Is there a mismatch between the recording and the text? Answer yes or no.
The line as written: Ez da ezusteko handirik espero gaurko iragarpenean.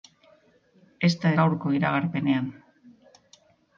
yes